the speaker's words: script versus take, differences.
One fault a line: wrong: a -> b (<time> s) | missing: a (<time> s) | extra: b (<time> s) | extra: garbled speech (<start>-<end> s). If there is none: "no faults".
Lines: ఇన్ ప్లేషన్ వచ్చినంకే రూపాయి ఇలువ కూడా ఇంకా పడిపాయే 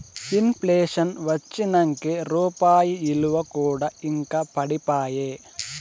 no faults